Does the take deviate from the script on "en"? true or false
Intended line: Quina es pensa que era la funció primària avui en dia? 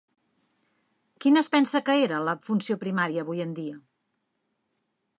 false